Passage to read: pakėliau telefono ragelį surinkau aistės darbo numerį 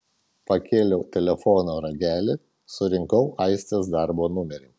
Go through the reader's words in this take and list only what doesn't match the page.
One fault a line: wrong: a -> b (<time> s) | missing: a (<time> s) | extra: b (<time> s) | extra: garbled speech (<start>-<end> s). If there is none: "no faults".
no faults